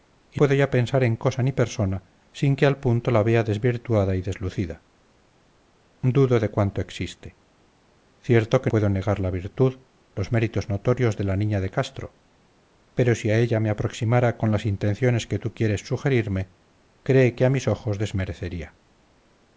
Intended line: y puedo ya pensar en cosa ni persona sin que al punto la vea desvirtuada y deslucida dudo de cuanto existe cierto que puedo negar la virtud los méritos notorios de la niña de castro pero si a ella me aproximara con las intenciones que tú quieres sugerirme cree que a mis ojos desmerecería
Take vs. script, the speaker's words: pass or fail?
pass